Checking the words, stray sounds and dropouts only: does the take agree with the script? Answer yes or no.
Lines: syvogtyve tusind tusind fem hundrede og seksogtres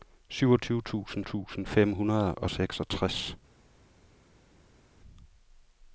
yes